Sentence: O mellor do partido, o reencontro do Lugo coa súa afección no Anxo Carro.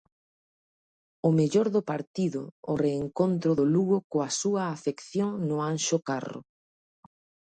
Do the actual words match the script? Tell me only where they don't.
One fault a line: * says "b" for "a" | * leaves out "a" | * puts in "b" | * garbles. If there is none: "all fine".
all fine